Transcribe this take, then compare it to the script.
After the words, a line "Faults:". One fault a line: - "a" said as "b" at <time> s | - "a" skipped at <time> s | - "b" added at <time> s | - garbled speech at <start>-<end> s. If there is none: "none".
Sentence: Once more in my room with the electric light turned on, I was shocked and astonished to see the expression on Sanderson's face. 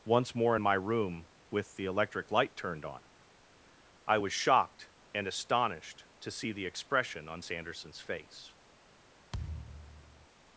Once more in my room with the electric light turned on, I was shocked and astonished to see the expression on Sanderson's face.
Faults:
none